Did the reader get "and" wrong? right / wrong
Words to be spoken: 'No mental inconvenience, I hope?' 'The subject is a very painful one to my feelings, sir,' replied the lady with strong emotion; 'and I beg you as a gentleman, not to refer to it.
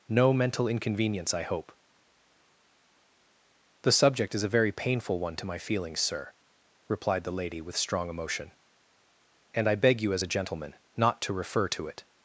right